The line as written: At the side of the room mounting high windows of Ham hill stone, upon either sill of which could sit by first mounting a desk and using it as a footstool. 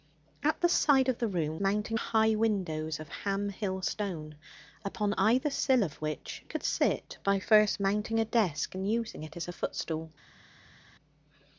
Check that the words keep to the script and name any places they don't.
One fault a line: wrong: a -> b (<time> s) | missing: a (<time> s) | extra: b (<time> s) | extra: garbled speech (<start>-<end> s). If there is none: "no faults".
no faults